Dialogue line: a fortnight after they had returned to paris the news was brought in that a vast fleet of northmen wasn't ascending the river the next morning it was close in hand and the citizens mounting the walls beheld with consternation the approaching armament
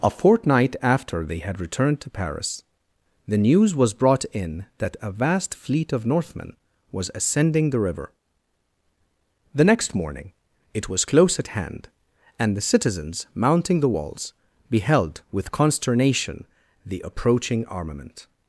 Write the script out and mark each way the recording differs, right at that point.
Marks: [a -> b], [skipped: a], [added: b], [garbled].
a fortnight after they had returned to paris the news was brought in that a vast fleet of northmen [wasn't -> was] ascending the river the next morning it was close [in -> at] hand and the citizens mounting the walls beheld with consternation the approaching armament